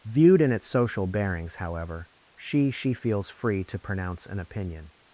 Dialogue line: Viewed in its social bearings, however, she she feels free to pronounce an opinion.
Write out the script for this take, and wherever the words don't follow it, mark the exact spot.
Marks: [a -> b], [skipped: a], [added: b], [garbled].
Viewed in its social bearings, however, she she feels free to pronounce an opinion.